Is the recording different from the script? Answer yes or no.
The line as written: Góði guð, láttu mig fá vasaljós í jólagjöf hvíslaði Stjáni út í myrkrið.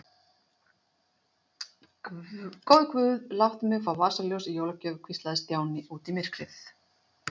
no